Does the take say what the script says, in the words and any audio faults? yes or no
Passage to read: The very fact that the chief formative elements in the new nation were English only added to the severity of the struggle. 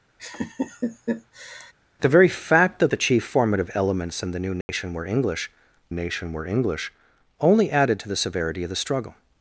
no